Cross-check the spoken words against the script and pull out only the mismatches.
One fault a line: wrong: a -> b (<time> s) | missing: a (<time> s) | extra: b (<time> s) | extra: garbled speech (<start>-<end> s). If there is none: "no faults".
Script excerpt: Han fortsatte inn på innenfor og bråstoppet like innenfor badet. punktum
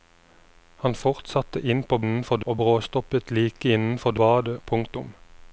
no faults